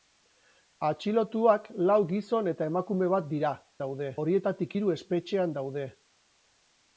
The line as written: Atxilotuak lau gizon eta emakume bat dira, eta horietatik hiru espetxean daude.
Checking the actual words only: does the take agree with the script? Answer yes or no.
no